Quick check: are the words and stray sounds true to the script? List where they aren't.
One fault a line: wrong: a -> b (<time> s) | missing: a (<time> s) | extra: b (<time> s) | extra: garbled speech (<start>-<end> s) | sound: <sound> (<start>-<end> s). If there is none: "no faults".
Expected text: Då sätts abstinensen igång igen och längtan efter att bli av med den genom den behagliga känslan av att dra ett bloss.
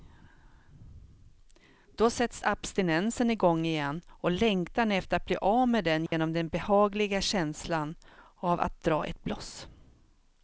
sound: dropout (6.1-6.1 s)